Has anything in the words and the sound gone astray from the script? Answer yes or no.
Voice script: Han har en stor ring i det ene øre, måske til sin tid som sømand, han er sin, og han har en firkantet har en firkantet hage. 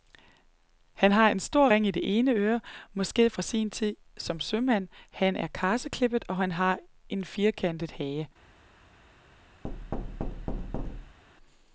yes